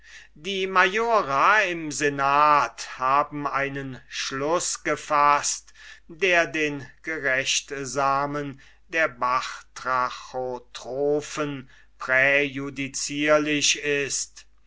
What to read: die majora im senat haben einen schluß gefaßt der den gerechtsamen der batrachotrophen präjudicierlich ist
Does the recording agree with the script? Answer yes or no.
yes